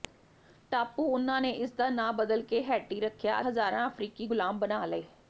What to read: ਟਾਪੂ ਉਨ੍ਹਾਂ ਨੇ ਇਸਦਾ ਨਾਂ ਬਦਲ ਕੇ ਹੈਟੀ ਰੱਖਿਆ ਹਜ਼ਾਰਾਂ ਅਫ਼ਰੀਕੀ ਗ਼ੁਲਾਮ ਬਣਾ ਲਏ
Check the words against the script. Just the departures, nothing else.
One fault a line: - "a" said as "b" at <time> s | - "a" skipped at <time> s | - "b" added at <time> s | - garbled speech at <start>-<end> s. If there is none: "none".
none